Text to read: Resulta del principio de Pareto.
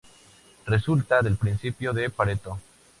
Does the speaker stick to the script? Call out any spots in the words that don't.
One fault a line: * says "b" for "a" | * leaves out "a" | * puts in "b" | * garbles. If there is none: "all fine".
all fine